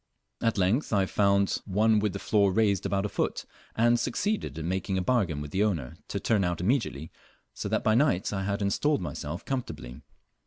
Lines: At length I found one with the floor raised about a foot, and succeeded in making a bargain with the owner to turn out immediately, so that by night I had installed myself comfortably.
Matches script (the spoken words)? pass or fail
pass